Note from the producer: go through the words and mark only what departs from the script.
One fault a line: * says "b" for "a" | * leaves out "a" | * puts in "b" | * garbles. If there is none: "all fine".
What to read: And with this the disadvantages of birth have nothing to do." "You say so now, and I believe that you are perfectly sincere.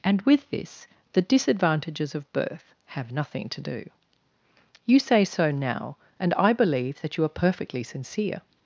all fine